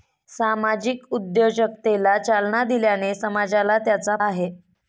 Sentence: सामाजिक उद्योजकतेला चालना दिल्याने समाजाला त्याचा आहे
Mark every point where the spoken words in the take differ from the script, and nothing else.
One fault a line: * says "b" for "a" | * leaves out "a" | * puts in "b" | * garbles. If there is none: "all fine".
all fine